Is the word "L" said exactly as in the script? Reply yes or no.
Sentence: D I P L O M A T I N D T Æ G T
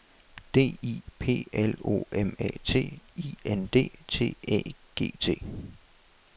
yes